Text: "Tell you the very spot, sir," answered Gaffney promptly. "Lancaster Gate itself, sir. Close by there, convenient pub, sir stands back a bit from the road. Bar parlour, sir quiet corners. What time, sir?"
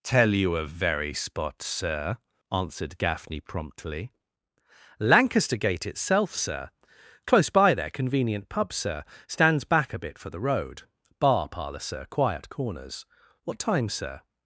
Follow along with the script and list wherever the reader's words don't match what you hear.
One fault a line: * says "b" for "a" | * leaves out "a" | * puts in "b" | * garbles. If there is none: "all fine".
* says "a" for "the"
* says "for" for "from"